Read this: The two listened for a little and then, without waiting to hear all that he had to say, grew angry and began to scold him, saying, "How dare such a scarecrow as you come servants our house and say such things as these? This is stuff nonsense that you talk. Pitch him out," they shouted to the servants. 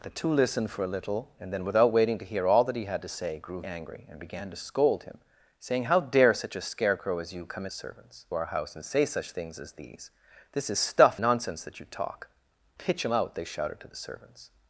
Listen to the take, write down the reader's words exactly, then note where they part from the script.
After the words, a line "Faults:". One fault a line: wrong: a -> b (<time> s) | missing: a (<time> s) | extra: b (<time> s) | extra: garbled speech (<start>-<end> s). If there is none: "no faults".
The two listened for a little and then, without waiting to hear all that he had to say, grew angry and began to scold him, saying, "How dare such a scarecrow as you come servants our house and say such things as these? This is stuff nonsense that you talk. Pitch him out," they shouted to the servants.
Faults:
no faults